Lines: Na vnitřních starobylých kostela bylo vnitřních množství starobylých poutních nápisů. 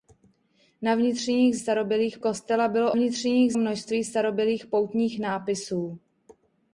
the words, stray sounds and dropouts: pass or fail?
pass